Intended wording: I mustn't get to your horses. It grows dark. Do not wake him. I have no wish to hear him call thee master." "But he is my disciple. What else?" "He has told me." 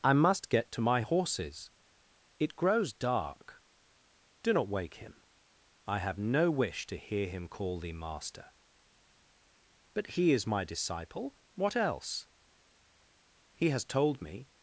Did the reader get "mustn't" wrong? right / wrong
wrong